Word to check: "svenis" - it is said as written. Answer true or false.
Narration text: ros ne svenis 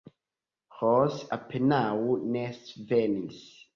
true